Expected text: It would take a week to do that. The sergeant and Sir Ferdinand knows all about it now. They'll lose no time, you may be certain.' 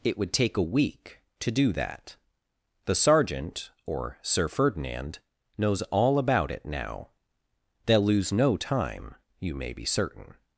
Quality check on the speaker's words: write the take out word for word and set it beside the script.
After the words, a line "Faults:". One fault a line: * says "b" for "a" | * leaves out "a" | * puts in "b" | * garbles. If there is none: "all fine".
It would take a week to do that. The sergeant or Sir Ferdinand knows all about it now. They'll lose no time, you may be certain.'
Faults:
* says "or" for "and"